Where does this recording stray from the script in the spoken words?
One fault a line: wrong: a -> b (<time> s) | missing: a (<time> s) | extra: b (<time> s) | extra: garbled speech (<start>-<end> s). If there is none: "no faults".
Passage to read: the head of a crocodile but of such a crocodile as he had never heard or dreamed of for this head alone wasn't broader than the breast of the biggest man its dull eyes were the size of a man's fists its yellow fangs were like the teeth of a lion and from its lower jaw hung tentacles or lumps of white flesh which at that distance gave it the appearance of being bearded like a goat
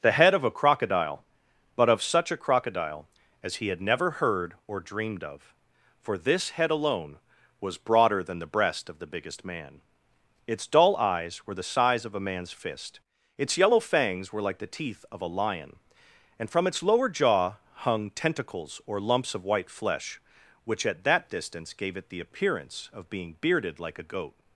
wrong: wasn't -> was (7.6 s)
wrong: fists -> fist (12.5 s)